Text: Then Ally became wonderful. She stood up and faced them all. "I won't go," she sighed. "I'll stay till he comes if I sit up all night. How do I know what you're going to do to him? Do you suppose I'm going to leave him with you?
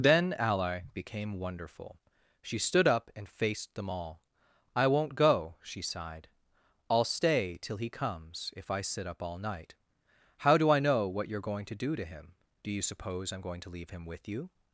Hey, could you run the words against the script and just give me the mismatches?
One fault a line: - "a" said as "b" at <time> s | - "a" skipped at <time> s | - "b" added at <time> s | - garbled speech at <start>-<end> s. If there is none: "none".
none